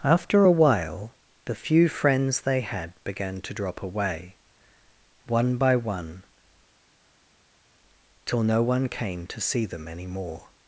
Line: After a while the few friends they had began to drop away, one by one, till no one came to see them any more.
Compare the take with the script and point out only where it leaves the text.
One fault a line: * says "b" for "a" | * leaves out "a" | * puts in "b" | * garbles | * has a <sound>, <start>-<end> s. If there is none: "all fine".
all fine